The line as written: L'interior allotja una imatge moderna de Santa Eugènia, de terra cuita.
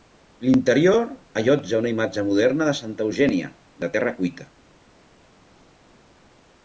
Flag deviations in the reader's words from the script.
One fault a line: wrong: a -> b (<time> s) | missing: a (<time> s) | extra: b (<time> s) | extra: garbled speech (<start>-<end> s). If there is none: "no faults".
no faults